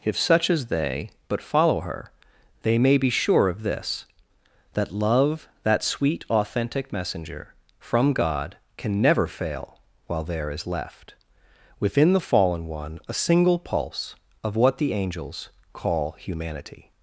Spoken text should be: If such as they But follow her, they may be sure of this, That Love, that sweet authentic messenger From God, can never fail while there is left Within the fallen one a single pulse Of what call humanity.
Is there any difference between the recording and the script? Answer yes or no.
yes